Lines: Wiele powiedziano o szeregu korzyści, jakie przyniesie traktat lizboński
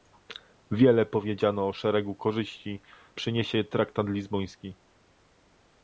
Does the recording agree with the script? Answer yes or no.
no